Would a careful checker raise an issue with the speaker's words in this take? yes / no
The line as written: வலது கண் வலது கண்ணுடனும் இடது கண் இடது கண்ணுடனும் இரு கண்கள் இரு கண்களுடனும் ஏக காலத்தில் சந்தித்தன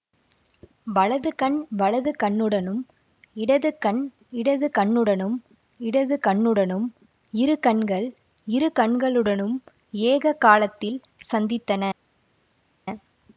yes